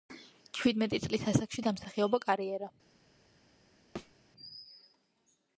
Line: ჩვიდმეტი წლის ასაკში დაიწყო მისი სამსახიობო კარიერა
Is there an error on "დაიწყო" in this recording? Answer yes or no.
yes